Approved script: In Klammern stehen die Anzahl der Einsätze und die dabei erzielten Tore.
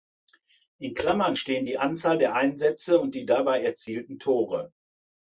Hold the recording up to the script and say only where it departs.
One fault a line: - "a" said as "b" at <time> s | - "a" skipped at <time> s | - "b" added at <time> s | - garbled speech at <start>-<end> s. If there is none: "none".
none